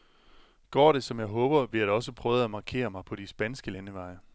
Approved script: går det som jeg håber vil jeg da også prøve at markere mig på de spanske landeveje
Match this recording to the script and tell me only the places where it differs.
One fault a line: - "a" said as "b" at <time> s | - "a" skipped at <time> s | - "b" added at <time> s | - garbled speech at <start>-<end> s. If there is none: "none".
none